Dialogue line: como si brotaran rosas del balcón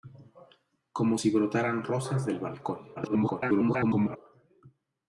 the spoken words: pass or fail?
fail